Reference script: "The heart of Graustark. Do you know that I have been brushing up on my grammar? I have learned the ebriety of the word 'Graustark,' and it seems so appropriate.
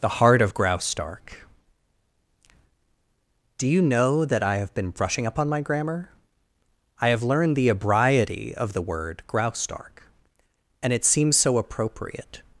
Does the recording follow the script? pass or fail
pass